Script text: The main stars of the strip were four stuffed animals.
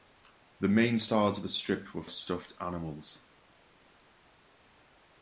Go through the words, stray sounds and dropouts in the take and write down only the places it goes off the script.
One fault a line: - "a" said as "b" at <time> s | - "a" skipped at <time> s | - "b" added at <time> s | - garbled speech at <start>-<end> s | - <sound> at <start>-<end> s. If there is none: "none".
- "four" skipped at 2.0 s